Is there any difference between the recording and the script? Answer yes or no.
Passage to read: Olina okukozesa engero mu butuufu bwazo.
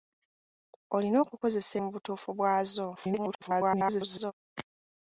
yes